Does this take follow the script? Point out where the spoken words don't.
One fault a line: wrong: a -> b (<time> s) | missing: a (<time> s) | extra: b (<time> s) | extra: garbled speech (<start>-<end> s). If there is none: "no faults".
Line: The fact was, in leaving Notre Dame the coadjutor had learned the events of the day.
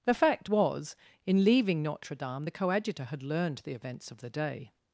no faults